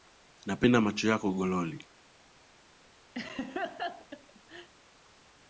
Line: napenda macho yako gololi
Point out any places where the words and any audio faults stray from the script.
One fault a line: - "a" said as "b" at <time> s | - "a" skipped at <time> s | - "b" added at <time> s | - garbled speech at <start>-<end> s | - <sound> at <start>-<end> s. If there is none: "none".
- laugh at 3.1-4.7 s